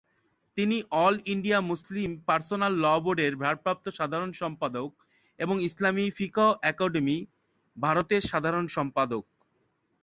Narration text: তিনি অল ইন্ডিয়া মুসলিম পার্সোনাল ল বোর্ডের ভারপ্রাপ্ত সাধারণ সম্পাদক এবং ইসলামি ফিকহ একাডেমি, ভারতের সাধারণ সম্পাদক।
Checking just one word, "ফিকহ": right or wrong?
right